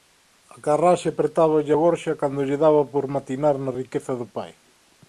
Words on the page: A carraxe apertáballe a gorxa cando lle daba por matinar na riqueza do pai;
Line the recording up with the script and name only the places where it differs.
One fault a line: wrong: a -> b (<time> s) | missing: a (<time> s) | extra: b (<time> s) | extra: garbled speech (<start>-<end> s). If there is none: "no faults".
no faults